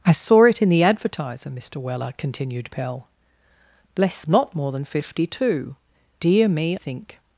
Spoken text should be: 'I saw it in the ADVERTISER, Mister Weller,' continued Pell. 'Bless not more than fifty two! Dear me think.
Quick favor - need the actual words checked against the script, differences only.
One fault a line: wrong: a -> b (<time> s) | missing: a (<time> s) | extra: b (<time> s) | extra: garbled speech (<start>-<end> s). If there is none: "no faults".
no faults